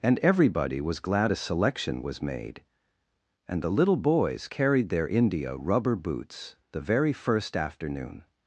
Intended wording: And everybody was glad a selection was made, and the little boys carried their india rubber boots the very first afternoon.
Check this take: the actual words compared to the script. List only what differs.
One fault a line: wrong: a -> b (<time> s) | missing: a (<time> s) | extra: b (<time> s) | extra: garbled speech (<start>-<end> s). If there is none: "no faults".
no faults